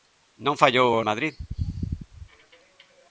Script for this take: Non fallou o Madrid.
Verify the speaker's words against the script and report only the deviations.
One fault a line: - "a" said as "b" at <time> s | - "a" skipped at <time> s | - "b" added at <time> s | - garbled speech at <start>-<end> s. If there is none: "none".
none